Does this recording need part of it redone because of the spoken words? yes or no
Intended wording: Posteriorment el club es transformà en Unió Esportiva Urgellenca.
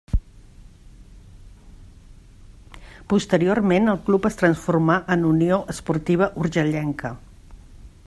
no